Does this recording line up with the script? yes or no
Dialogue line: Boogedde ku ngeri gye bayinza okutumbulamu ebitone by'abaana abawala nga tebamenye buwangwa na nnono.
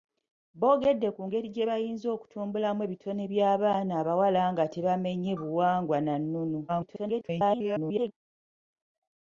no